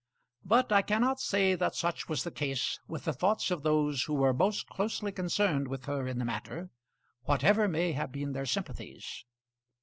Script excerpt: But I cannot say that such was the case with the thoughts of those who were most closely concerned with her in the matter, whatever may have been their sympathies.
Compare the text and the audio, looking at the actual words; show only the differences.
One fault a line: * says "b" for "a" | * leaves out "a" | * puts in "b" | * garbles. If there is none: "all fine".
all fine